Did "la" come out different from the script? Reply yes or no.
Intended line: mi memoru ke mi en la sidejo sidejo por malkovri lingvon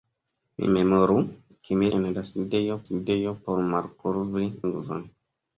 no